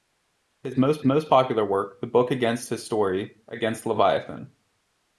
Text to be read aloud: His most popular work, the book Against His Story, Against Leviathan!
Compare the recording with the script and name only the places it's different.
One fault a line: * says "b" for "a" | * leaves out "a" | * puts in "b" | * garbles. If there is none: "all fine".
* puts in "most"